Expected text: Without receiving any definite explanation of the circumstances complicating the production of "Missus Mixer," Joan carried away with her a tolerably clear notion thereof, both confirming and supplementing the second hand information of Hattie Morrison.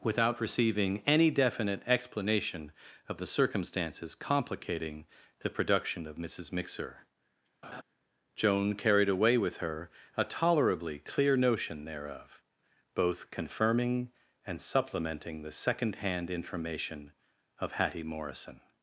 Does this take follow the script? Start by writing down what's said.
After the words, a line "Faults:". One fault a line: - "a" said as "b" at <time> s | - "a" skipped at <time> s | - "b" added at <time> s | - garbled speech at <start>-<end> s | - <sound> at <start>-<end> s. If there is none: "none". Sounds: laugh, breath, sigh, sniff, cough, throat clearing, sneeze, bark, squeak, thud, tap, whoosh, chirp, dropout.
Without receiving any definite explanation of the circumstances complicating the production of "Missus Mixer," Joan carried away with her a tolerably clear notion thereof, both confirming and supplementing the second hand information of Hattie Morrison.
Faults:
- laugh at 7.6-7.8 s